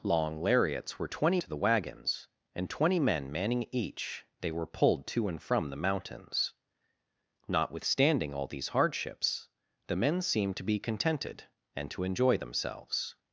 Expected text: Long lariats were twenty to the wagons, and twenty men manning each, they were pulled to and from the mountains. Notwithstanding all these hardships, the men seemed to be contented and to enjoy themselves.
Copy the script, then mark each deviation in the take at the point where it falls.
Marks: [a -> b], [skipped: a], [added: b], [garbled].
Long lariats were twenty to the wagons, and twenty men manning each, they were pulled to and from the mountains. Notwithstanding all these hardships, the men seemed to be contented and to enjoy themselves.